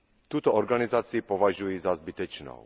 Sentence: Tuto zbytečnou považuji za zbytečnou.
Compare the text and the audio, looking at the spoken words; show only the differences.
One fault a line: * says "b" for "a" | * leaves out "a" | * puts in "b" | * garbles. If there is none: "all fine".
* says "organizaci" for "zbytečnou"